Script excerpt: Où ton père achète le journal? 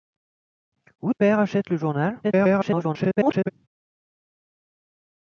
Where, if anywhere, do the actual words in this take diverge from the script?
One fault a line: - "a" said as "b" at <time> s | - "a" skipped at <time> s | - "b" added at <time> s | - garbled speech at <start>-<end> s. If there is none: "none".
- "ton" skipped at 1.1 s
- garbled speech at 2.2-3.5 s